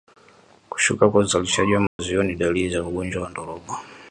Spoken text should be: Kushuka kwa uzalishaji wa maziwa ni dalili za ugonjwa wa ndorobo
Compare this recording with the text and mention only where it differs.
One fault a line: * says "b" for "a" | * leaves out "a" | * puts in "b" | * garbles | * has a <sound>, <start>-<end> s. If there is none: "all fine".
* has a dropout, 1.9-2.0 s